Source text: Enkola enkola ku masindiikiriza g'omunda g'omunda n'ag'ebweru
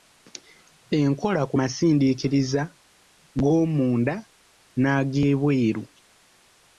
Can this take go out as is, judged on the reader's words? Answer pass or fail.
fail